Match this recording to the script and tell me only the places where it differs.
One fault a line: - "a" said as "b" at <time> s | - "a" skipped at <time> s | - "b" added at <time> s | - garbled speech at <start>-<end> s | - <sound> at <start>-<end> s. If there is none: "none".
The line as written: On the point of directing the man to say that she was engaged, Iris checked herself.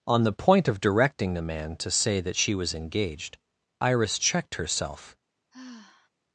- sigh at 5.5-6.1 s